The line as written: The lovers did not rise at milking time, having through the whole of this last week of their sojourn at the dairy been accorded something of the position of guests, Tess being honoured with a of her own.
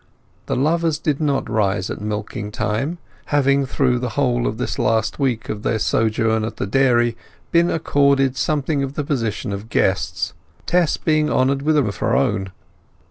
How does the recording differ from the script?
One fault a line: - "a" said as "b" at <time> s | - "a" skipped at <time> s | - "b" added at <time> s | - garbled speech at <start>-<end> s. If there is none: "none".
none